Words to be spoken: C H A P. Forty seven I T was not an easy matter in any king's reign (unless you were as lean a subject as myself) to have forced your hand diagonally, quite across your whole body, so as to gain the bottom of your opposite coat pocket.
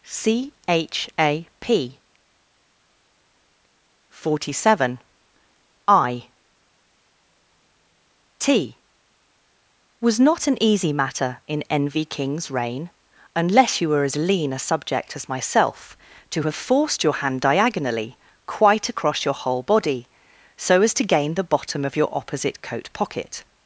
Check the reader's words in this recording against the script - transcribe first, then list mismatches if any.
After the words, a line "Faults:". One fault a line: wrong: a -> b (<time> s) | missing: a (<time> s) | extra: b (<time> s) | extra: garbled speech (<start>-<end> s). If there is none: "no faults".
C H A P. Forty seven I T was not an easy matter in envy king's reign (unless you were as lean a subject as myself) to have forced your hand diagonally, quite across your whole body, so as to gain the bottom of your opposite coat pocket.
Faults:
wrong: any -> envy (11.7 s)